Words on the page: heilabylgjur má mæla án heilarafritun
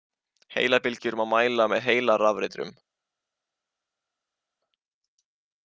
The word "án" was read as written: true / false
false